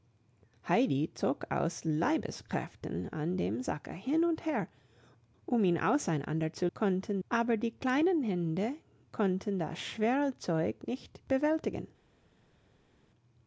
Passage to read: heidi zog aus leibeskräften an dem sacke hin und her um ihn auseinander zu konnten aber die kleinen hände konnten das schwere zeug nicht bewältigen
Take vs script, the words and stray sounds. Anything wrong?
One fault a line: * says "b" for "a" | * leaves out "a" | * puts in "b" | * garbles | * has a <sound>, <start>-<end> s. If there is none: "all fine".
all fine